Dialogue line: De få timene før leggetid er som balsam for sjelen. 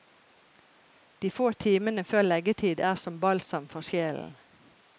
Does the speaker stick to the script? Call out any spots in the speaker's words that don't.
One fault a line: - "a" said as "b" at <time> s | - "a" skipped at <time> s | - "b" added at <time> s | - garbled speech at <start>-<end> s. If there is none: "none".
none